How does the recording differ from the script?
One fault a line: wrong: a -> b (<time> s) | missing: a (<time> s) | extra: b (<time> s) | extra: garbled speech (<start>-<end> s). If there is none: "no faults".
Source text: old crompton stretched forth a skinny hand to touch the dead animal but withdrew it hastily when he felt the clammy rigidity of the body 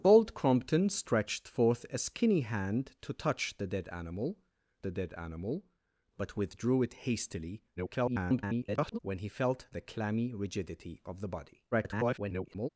extra: the dead animal (4.8 s)
extra: garbled speech (7.8-9.0 s)
extra: garbled speech (11.7-12.7 s)